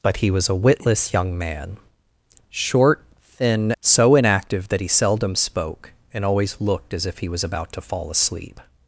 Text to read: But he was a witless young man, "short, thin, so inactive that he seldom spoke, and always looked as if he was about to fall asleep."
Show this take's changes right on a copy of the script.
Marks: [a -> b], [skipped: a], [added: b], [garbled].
But he was a witless young man, "short, thin, so inactive that he seldom spoke, and always looked as if he was about to fall asleep."